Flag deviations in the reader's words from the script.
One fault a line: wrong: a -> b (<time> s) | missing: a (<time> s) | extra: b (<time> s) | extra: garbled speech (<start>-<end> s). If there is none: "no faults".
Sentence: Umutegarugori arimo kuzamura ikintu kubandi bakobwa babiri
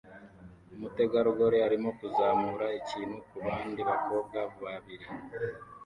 no faults